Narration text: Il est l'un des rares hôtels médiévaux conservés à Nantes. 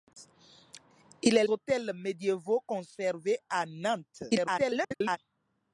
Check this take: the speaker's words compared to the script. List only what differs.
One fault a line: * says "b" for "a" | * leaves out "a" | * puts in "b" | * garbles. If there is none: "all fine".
* leaves out "l'un des rares"
* garbles